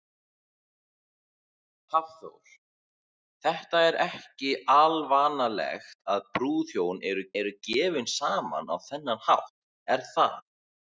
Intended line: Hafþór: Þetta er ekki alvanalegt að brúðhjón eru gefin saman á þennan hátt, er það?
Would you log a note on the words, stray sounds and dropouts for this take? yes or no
yes